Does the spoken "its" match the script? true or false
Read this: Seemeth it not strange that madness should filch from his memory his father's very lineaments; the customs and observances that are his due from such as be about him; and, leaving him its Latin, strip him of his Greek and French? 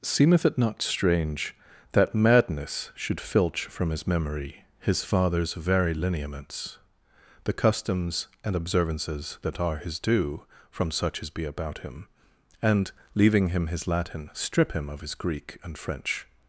false